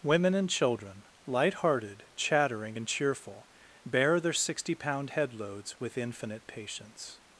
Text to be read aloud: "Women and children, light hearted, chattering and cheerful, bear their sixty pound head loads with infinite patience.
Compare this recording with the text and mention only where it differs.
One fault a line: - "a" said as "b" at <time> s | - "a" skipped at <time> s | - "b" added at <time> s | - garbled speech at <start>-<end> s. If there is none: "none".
none